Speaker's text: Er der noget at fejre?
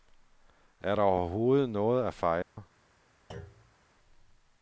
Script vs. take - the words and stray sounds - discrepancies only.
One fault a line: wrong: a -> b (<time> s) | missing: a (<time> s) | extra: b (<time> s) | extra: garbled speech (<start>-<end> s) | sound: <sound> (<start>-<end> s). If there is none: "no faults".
extra: overhovedet (1.0 s)
sound: dropout (2.4-2.6 s)
sound: thud (3.3-3.8 s)